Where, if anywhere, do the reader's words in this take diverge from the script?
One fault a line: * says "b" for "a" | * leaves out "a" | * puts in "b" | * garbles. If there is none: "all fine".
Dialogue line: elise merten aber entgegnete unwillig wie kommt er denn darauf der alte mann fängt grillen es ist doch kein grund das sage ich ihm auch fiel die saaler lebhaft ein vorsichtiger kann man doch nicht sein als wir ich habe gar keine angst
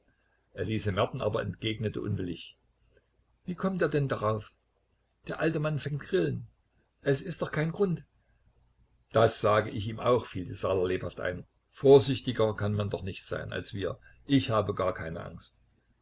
all fine